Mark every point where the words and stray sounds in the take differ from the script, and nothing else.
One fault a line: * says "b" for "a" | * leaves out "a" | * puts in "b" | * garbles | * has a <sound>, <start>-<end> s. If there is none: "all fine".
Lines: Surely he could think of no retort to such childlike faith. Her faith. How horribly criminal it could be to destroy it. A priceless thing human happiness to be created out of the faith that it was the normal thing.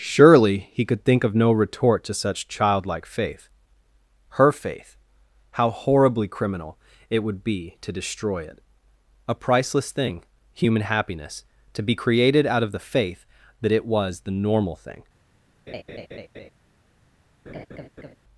* says "would" for "could"
* has a laugh, 15.7-16.5 s
* has a laugh, 17.5-18.1 s